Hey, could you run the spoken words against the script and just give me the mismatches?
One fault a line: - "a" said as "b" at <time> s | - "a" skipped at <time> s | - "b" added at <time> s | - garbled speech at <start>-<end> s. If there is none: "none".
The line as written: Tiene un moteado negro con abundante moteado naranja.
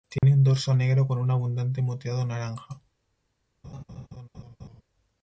- "moteado" said as "dorso" at 0.4 s
- "un" added at 1.2 s